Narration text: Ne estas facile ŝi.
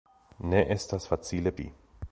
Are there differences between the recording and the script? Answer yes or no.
no